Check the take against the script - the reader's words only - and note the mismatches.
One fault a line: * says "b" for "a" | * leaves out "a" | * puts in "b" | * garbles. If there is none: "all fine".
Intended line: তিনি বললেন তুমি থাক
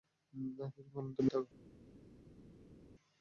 all fine